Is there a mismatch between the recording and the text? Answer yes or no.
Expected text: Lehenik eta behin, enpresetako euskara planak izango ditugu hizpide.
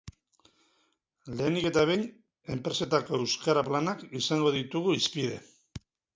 no